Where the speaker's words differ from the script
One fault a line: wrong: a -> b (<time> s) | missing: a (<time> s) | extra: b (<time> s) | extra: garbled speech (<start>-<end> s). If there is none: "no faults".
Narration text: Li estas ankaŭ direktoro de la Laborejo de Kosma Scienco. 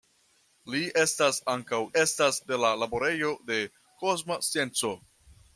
wrong: direktoro -> estas (2.0 s)